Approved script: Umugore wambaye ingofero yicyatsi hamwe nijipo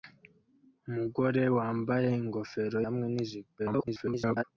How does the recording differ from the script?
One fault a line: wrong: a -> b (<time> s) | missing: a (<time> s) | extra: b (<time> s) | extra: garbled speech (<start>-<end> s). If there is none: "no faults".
missing: yicyatsi (2.8 s)
extra: garbled speech (3.6-4.4 s)